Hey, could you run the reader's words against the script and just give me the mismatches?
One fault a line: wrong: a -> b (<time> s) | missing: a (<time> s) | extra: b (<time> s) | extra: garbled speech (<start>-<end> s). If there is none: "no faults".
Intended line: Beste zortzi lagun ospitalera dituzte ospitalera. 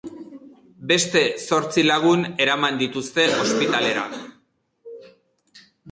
wrong: ospitalera -> eraman (2.5 s)